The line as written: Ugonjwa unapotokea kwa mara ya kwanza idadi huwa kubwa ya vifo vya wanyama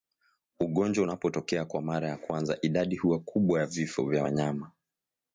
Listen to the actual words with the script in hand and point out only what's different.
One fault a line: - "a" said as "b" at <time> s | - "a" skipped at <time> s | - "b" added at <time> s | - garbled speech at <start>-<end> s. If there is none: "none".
none